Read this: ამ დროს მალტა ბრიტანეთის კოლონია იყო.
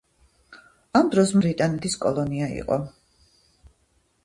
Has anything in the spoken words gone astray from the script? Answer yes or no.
yes